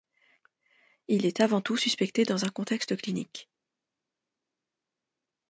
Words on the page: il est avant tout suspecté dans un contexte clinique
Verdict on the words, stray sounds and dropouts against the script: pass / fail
pass